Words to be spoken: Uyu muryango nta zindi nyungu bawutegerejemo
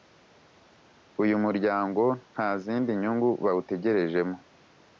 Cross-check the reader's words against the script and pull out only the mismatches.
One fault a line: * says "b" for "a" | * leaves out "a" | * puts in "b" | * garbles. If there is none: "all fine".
all fine